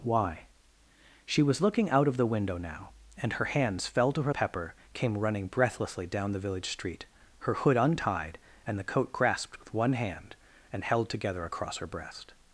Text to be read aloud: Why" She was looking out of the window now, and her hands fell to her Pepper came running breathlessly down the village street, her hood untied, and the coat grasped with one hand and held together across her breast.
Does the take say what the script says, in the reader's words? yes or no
yes